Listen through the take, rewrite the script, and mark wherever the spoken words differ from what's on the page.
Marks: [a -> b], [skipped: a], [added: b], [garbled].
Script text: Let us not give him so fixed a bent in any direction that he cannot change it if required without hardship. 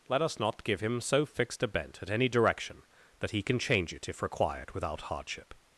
Let us not give him so fixed a bent [in -> at] any direction that he [cannot -> can] change it if required without hardship.